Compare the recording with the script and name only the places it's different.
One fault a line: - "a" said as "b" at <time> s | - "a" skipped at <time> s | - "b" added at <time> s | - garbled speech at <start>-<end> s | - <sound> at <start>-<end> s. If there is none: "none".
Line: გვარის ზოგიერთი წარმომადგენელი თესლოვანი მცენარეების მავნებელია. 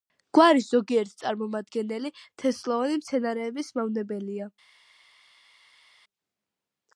none